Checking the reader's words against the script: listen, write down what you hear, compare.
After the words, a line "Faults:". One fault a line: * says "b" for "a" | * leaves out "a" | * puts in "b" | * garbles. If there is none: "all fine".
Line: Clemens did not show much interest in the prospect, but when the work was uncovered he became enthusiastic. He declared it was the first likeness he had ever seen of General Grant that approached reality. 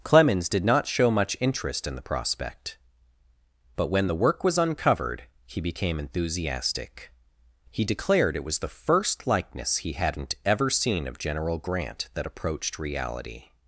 Clemens did not show much interest in the prospect, but when the work was uncovered he became enthusiastic. He declared it was the first likeness he hadn't ever seen of General Grant that approached reality.
Faults:
* says "hadn't" for "had"